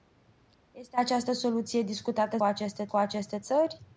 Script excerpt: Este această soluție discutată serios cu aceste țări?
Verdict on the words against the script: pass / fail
fail